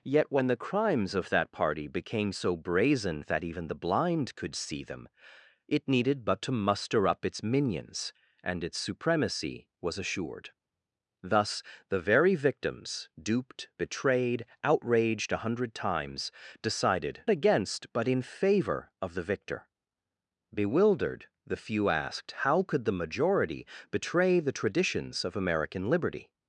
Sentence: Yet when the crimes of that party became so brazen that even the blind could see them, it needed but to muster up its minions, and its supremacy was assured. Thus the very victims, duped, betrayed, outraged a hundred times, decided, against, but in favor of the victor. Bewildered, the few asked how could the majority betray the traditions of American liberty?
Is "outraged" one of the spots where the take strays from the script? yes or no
no